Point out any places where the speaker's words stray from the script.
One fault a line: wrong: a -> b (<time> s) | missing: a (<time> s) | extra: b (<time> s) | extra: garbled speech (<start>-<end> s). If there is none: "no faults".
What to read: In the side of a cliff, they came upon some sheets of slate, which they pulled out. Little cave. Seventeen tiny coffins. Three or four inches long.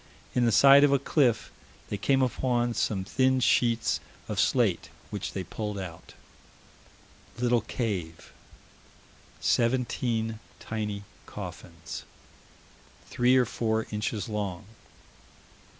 extra: thin (3.0 s)